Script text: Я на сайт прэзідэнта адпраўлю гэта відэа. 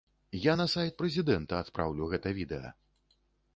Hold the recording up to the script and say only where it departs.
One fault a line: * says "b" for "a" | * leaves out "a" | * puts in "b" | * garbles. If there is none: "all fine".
all fine